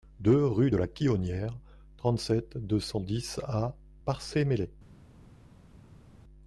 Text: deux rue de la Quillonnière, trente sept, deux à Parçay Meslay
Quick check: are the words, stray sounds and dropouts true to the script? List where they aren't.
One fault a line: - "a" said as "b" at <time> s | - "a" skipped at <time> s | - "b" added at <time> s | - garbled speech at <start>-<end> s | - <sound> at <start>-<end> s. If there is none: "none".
- "cent dix" added at 2.8 s